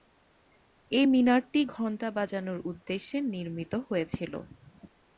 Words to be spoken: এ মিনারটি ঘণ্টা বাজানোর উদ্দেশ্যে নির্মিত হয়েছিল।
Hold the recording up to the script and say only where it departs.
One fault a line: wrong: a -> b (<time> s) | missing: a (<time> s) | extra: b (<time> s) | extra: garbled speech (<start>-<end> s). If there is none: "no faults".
no faults